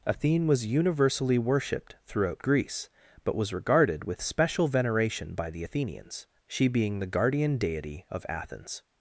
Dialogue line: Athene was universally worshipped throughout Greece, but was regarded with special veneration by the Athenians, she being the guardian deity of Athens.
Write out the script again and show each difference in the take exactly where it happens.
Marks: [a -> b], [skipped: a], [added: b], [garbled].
Athene was universally worshipped throughout Greece, but was regarded with special veneration by the Athenians, she being the guardian deity of Athens.